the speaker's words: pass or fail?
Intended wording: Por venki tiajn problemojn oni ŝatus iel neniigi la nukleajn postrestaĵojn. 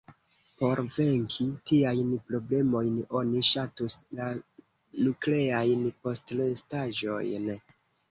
fail